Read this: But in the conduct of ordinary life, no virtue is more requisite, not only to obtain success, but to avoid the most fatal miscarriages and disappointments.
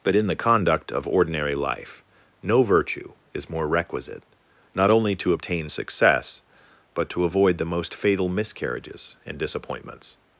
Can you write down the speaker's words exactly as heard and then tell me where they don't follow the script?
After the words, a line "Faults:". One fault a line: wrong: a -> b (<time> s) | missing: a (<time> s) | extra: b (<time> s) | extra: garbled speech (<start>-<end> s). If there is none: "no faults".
But in the conduct of ordinary life, no virtue is more requisite, not only to obtain success, but to avoid the most fatal miscarriages and disappointments.
Faults:
no faults